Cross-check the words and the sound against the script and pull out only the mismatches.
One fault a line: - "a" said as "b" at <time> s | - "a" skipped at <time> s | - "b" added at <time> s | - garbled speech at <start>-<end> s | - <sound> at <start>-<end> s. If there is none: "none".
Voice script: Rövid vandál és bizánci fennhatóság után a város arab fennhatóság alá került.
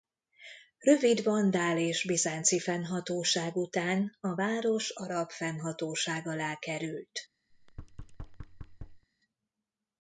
- thud at 7.5-9.1 s